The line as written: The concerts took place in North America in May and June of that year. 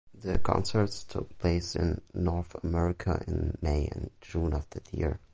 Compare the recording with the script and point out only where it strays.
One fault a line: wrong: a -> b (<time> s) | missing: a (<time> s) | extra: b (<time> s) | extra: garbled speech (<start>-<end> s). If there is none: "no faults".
no faults